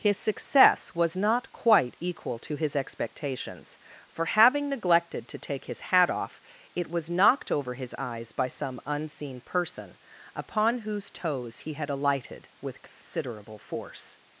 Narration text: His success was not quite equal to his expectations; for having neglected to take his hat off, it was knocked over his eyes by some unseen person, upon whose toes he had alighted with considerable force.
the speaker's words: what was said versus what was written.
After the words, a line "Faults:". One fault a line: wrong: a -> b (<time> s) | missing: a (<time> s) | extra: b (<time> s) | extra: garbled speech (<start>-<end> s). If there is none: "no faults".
His success was not quite equal to his expectations; for having neglected to take his hat off, it was knocked over his eyes by some unseen person, upon whose toes he had alighted with considerable force.
Faults:
no faults